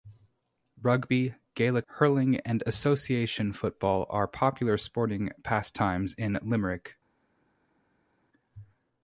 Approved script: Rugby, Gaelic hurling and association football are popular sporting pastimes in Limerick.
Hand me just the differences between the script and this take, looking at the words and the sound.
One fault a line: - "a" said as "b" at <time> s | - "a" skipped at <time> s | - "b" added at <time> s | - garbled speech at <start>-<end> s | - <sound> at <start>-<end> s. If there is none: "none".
none